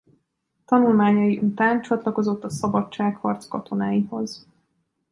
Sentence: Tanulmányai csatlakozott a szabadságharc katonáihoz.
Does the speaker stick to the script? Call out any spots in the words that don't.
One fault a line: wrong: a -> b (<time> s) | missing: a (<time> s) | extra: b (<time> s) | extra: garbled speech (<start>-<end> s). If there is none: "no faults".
extra: után (1.4 s)